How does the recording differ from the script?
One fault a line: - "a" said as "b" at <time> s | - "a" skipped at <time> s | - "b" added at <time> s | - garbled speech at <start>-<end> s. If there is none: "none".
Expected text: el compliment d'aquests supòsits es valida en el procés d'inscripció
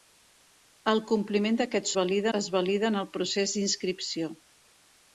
- "supòsits" said as "valida" at 2.0 s